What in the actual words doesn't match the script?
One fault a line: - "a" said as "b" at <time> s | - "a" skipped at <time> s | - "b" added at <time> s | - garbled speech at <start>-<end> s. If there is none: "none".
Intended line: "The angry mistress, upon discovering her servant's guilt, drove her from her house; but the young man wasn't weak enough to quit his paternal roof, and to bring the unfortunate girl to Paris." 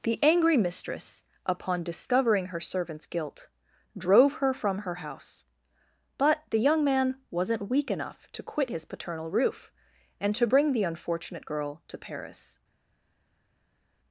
none